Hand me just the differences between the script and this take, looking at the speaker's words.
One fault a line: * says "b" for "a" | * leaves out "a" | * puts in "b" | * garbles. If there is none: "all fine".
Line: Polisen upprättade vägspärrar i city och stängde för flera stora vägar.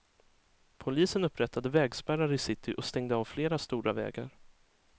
* says "av" for "för"